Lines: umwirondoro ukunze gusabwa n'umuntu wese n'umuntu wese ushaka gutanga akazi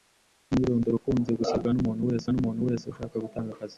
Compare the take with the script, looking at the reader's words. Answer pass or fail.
pass